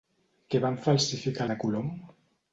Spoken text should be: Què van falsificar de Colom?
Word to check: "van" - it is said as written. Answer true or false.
true